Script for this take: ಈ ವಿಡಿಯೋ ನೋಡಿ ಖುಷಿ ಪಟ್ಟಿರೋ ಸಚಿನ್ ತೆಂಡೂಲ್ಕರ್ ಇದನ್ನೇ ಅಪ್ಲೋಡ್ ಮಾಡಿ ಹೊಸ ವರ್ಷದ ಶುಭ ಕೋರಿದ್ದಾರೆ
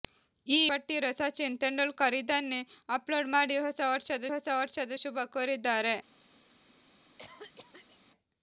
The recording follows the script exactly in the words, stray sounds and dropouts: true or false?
false